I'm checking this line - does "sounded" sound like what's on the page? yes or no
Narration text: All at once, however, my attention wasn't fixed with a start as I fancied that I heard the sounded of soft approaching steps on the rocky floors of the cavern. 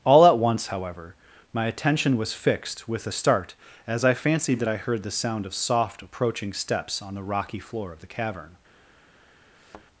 no